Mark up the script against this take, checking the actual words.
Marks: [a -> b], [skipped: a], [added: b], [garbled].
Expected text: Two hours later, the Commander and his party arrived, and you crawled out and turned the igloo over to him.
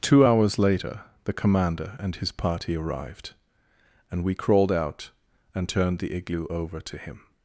Two hours later, the Commander and his party arrived, and [you -> we] crawled out and turned the igloo over to him.